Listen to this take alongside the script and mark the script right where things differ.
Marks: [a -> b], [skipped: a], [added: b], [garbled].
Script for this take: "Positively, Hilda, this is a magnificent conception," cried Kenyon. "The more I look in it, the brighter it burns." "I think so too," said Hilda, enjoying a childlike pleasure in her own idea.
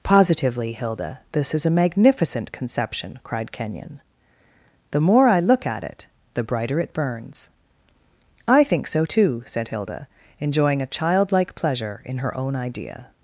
"Positively, Hilda, this is a magnificent conception," cried Kenyon. "The more I look [in -> at] it, the brighter it burns." "I think so too," said Hilda, enjoying a childlike pleasure in her own idea.